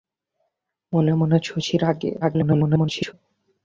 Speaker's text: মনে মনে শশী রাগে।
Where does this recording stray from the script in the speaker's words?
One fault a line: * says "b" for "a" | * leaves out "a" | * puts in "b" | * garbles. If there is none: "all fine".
* garbles